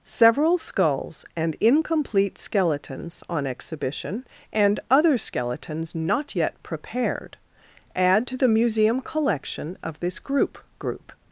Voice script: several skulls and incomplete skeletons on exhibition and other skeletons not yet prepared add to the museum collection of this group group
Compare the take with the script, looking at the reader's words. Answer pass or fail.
pass